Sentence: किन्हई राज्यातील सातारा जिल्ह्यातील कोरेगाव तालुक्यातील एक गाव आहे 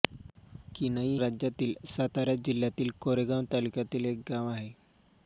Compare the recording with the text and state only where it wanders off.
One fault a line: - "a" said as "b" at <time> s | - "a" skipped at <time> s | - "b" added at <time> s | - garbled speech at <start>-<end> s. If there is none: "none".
none